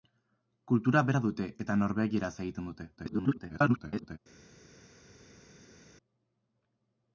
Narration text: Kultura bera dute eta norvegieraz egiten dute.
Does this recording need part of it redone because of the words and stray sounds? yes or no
yes